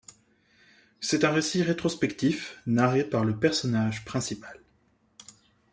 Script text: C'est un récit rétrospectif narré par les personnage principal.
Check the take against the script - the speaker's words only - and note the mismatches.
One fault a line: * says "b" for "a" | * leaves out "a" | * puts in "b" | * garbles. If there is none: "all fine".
* says "le" for "les"